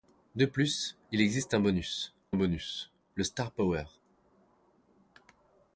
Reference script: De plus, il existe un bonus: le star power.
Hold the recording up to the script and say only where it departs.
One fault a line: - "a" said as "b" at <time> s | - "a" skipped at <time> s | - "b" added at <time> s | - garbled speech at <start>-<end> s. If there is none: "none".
- "bonus" added at 2.3 s